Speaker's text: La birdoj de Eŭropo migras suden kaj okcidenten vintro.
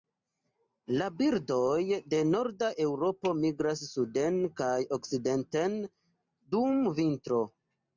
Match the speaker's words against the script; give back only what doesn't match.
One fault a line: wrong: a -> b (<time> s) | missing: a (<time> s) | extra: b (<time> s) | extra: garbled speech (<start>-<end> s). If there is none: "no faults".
extra: norda (2.3 s)
extra: dum (6.6 s)